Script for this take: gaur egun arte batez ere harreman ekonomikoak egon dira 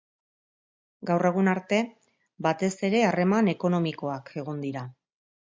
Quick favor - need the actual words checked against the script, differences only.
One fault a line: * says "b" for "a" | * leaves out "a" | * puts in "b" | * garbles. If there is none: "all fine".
all fine